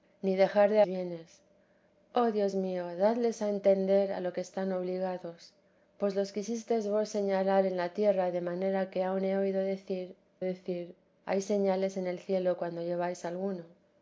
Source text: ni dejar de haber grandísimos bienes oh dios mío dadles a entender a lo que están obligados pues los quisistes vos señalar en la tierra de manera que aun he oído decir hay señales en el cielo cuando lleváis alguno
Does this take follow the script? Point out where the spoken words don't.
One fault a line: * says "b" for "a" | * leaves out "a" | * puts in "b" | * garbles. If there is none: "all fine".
* leaves out "haber grandísimos"
* puts in "decir"